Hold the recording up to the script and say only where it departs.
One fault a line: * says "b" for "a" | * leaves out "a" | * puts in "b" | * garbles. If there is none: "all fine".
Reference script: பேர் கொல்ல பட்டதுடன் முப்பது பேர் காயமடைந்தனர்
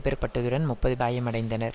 * leaves out "கொல்ல"
* leaves out "பேர்"